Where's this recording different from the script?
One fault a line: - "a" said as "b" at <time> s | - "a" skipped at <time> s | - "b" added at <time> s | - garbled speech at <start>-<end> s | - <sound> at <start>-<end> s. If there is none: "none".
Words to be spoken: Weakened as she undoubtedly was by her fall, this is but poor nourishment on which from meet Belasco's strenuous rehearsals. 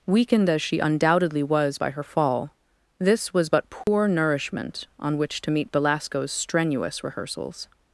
- "is" said as "was" at 3.3 s
- dropout at 3.8-3.9 s
- "from" said as "to" at 5.4 s